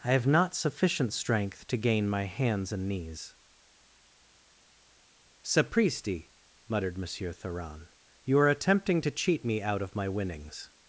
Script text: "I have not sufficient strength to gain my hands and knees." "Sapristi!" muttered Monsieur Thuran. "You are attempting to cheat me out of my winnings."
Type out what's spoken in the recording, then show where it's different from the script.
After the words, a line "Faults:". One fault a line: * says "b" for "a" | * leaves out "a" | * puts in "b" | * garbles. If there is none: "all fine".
"I have not sufficient strength to gain my hands and knees." "Sapristi!" muttered Monsieur Thuran. "You are attempting to cheat me out of my winnings."
Faults:
all fine